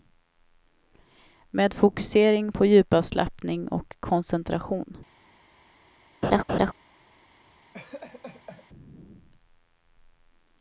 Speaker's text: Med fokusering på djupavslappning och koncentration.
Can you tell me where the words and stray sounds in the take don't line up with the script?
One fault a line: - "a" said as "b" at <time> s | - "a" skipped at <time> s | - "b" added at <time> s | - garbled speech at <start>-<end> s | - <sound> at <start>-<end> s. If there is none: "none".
- laugh at 6.2-6.7 s
- laugh at 7.7-8.7 s